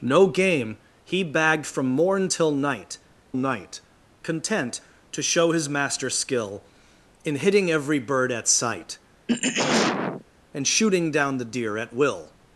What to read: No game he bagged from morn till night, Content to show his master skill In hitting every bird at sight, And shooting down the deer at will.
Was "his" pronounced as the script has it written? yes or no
yes